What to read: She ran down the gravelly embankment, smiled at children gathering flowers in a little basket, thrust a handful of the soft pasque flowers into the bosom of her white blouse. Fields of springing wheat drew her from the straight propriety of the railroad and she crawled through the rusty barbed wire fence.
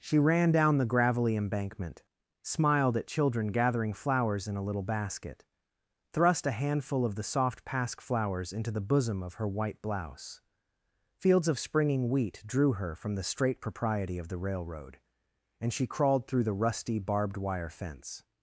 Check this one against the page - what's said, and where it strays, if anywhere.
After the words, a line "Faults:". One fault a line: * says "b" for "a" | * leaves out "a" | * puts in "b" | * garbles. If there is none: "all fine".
She ran down the gravelly embankment, smiled at children gathering flowers in a little basket, thrust a handful of the soft pasque flowers into the bosom of her white blouse. Fields of springing wheat drew her from the straight propriety of the railroad and she crawled through the rusty barbed wire fence.
Faults:
all fine